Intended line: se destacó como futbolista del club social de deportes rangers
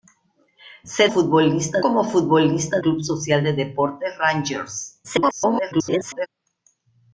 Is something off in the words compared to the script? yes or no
yes